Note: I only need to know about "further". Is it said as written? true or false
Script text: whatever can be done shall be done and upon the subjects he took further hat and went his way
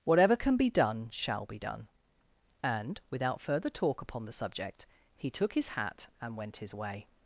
false